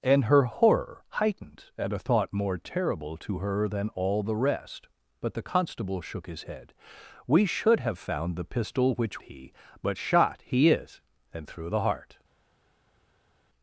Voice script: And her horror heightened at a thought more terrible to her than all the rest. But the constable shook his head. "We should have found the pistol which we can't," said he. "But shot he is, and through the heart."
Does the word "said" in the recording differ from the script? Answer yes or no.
yes